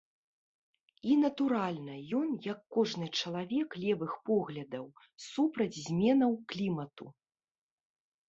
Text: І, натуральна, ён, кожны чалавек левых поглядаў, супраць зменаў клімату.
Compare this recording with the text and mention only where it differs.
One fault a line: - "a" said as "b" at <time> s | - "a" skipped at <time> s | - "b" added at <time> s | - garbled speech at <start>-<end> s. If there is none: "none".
- "як" added at 2.5 s